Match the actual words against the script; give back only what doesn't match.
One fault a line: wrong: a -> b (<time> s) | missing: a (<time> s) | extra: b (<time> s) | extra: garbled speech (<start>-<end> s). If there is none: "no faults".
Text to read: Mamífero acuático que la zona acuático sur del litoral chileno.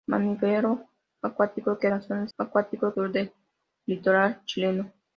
no faults